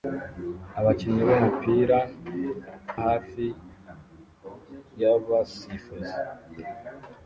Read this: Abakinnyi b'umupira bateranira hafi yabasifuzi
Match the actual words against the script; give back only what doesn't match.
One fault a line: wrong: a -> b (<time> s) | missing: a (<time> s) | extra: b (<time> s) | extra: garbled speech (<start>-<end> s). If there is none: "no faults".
missing: bateranira (2.0 s)